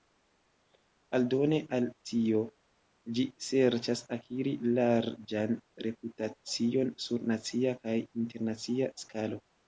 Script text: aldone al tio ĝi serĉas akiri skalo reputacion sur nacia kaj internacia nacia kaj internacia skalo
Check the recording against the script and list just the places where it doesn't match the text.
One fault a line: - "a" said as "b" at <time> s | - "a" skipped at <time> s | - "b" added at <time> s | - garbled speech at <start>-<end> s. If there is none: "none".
- "skalo" said as "larĝan" at 4.8 s
- "nacia kaj internacia" skipped at 8.9 s